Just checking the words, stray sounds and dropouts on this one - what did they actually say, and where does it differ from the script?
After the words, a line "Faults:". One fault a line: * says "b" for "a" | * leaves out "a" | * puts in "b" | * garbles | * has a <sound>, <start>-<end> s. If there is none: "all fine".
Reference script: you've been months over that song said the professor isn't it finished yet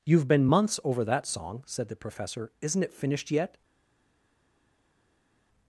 you've been months over that song said the professor isn't it finished yet
Faults:
all fine